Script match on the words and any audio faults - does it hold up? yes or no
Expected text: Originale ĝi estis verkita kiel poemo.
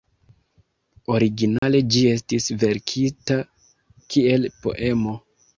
no